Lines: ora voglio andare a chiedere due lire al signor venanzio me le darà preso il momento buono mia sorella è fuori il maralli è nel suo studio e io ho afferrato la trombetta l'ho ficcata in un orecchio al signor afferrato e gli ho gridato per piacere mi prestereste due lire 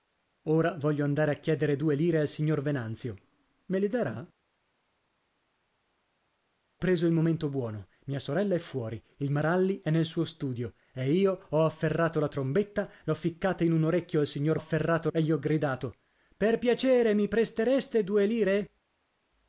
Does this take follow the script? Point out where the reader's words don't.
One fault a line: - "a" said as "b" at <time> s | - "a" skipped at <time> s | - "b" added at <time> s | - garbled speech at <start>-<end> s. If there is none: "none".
none